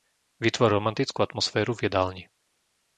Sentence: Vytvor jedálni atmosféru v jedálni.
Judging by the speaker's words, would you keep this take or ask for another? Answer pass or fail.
fail